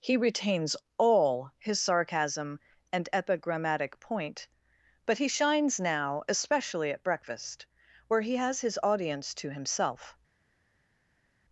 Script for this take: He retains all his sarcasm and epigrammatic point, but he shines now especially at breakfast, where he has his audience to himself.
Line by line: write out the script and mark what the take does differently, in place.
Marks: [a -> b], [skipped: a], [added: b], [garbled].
He retains all his sarcasm and epigrammatic point, but he shines now especially at breakfast, where he has his audience to himself.